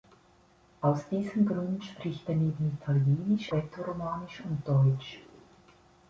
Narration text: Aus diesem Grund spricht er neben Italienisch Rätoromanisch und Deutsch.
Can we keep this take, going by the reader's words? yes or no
yes